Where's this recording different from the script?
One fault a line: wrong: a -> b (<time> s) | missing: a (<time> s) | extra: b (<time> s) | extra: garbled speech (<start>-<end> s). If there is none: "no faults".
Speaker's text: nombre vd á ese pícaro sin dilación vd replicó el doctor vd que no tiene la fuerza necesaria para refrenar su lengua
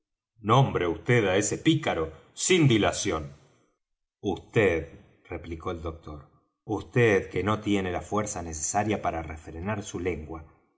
no faults